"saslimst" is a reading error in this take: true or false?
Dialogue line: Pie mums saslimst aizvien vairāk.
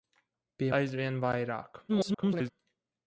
true